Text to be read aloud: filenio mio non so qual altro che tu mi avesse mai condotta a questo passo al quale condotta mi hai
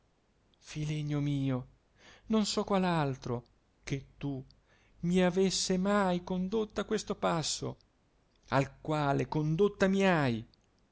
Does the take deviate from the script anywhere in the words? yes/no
no